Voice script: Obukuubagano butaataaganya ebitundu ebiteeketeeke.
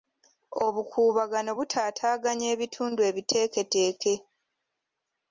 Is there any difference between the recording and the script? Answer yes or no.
no